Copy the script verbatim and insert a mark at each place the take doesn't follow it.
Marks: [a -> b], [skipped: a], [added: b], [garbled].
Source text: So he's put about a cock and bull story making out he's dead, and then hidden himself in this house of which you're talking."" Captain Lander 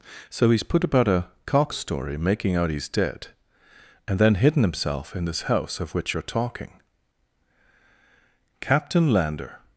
So he's put about a cock [skipped: and bull] story making out he's dead, and then hidden himself in this house of which you're talking."" Captain Lander